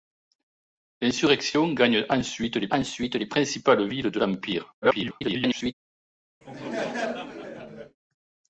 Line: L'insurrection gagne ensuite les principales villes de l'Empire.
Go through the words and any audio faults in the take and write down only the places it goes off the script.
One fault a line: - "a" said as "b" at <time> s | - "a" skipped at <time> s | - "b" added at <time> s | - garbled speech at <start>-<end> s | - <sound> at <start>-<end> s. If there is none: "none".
- "ensuite les" added at 2.7 s
- garbled speech at 4.8-5.7 s
- laugh at 6.4-8.0 s